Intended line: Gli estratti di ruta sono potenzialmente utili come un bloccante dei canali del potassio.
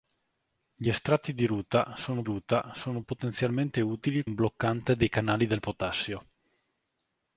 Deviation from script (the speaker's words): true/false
true